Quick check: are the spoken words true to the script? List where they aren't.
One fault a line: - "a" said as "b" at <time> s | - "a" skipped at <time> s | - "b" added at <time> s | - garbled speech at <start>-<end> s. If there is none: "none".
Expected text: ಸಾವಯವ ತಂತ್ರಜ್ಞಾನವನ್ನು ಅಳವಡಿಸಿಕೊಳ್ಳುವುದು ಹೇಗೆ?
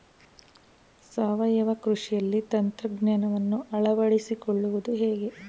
- "ಕೃಷಿಯಲ್ಲಿ" added at 1.8 s